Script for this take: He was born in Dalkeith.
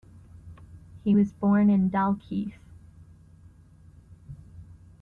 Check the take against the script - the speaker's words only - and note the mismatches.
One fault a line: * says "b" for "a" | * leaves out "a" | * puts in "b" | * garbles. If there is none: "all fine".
all fine